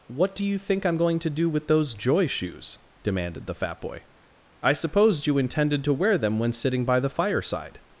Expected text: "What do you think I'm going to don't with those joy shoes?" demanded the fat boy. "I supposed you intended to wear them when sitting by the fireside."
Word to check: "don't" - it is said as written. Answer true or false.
false